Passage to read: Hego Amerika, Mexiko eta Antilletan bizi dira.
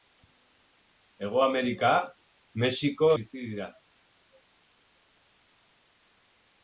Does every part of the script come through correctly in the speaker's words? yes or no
no